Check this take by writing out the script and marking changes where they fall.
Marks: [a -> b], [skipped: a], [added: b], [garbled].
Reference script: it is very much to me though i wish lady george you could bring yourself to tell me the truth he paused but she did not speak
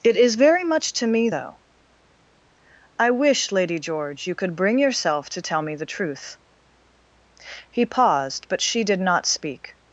it is very much to me though i wish lady george you could bring yourself to tell me the truth he paused but she did not speak